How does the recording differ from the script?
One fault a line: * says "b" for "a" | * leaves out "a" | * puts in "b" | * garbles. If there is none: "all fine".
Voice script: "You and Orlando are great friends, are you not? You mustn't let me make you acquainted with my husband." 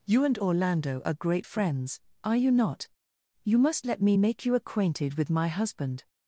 * says "must" for "mustn't"